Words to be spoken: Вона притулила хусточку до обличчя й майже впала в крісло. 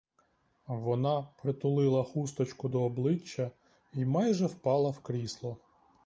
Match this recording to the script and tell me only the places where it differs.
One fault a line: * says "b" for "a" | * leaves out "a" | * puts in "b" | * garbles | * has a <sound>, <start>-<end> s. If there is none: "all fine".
all fine